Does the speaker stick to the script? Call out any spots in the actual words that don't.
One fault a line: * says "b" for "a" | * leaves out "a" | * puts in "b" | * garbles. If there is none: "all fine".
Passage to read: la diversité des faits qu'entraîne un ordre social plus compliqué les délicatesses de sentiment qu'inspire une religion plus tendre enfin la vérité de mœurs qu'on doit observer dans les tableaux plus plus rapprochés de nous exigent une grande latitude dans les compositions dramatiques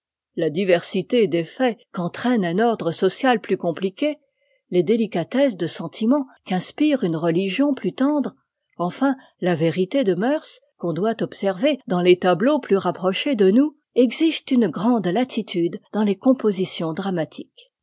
* leaves out "plus"